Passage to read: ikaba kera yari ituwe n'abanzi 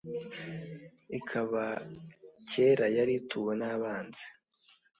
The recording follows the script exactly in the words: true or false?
true